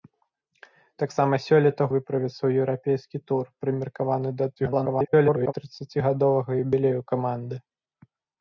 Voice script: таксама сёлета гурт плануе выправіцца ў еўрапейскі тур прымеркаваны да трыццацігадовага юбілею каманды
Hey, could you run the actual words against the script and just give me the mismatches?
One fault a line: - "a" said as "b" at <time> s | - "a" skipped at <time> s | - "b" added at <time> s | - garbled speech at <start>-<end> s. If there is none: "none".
- "гурт плануе" skipped at 1.8 s
- garbled speech at 4.6-5.5 s